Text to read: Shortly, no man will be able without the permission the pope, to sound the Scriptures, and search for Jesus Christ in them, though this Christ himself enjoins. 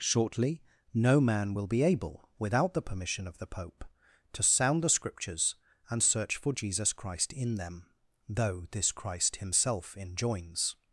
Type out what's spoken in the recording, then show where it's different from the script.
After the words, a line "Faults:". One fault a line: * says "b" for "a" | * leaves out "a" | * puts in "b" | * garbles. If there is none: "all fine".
Shortly, no man will be able without the permission of the pope, to sound the Scriptures, and search for Jesus Christ in them, though this Christ himself enjoins.
Faults:
* puts in "of"